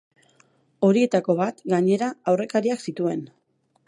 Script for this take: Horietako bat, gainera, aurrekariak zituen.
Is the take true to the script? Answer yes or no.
yes